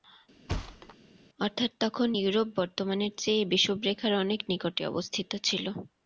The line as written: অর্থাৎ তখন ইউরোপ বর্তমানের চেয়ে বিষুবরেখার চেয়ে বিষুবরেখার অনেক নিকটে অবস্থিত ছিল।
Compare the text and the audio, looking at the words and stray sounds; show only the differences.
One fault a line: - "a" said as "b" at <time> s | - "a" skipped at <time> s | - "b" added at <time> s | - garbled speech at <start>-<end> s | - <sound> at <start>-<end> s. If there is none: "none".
- thud at 0.5-1.0 s
- "চেয়ে বিষুবরেখার" skipped at 4.1 s